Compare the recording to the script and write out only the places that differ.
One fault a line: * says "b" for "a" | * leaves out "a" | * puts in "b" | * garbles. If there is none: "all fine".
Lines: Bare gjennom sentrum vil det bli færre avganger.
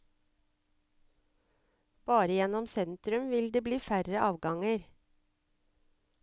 all fine